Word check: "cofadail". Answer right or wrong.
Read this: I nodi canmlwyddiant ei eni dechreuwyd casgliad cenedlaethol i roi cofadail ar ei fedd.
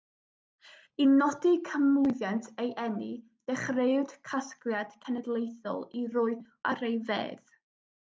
wrong